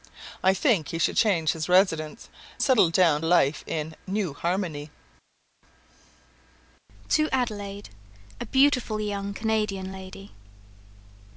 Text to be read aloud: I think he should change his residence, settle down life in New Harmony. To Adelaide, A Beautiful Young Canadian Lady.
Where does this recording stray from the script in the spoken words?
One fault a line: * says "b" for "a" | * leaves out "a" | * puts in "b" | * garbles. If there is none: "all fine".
all fine